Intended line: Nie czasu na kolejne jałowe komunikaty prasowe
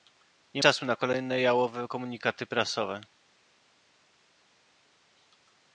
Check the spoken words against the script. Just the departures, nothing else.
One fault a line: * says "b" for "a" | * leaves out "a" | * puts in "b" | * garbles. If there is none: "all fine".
all fine